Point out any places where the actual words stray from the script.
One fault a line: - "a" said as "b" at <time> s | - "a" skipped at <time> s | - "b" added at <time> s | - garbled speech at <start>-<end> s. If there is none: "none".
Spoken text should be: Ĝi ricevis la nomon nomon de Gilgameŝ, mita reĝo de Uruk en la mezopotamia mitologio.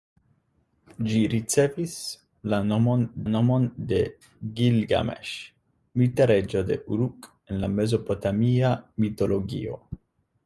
none